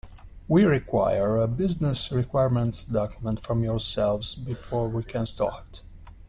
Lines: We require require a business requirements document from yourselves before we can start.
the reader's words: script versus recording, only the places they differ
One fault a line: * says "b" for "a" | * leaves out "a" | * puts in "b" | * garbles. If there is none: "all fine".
* leaves out "require"